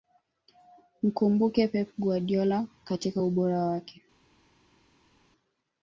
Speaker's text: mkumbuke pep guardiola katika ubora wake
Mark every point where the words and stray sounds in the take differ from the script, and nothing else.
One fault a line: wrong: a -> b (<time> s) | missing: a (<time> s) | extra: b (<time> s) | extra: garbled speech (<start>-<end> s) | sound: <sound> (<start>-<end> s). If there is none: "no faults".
no faults